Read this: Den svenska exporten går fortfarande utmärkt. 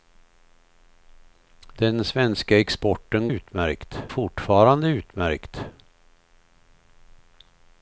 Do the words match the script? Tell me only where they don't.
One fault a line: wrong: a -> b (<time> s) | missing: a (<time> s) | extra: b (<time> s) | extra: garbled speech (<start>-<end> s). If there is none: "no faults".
wrong: går -> utmärkt (3.3 s)